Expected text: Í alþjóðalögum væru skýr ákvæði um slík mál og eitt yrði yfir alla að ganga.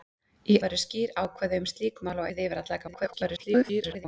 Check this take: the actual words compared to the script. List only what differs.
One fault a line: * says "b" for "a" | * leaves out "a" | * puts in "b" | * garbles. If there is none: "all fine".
* leaves out "alþjóðalögum"
* leaves out "eitt"
* garbles